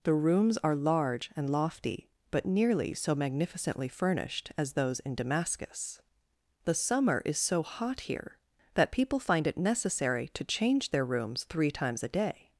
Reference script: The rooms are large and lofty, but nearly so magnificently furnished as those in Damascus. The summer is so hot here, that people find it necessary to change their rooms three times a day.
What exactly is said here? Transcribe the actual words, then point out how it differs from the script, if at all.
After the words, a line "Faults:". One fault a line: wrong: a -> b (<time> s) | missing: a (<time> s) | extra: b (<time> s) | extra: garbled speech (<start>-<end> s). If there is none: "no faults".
The rooms are large and lofty, but nearly so magnificently furnished as those in Damascus. The summer is so hot here, that people find it necessary to change their rooms three times a day.
Faults:
no faults